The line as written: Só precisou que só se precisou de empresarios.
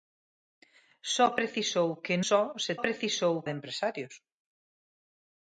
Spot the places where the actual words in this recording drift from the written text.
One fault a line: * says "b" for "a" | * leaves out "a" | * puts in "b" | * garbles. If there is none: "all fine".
all fine